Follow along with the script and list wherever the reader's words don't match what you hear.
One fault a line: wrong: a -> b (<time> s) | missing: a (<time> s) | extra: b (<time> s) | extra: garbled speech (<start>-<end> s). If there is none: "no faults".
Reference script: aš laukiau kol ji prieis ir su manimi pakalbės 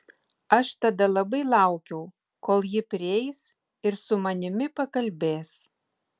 extra: tada labai (0.8 s)